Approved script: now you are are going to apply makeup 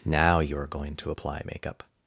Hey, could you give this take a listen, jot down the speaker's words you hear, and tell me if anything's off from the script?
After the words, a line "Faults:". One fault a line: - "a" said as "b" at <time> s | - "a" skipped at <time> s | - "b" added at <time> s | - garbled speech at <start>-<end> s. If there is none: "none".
now you are going to apply makeup
Faults:
- "are" skipped at 0.7 s